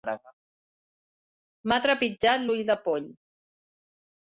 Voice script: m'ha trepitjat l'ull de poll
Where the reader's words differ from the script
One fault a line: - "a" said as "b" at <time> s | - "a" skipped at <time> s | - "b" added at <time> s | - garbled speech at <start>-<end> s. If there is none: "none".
none